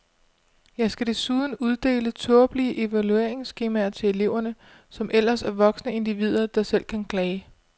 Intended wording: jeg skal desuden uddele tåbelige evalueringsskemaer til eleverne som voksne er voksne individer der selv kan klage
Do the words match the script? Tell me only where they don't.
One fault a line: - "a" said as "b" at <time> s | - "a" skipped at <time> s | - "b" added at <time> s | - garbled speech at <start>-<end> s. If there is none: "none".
- "voksne" said as "ellers" at 5.1 s